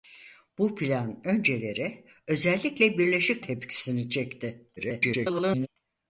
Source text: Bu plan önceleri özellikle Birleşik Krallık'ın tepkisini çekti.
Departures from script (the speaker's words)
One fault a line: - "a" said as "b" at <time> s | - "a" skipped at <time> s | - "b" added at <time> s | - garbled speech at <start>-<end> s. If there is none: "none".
- "Krallık'ın" skipped at 3.5 s
- garbled speech at 4.8-5.7 s